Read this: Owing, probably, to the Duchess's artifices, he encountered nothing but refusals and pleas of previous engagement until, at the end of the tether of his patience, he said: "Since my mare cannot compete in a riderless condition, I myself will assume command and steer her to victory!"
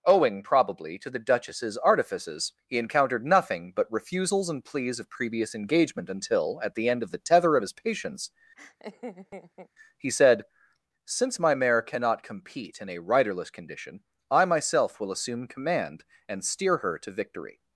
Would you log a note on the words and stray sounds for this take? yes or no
yes